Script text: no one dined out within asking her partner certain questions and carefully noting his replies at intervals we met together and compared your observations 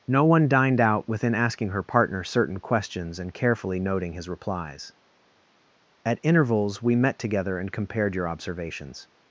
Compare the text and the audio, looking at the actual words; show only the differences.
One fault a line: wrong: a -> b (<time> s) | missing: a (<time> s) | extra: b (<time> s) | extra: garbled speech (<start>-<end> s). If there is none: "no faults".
no faults